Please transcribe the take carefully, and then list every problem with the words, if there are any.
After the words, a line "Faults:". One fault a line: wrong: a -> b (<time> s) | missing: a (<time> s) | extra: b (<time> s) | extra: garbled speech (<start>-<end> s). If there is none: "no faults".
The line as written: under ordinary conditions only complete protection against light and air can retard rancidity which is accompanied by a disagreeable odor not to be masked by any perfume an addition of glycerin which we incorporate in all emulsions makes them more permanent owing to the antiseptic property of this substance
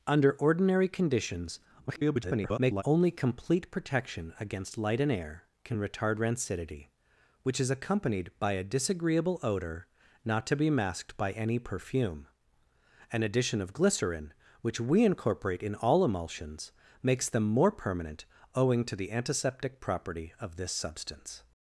under ordinary conditions [garbled] only complete protection against light and air can retard rancidity which is accompanied by a disagreeable odor not to be masked by any perfume an addition of glycerin which we incorporate in all emulsions makes them more permanent owing to the antiseptic property of this substance
Faults:
extra: garbled speech (1.9-2.8 s)